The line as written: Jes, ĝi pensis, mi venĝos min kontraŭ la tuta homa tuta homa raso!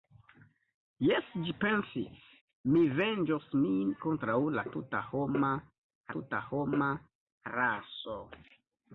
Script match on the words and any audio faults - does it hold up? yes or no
yes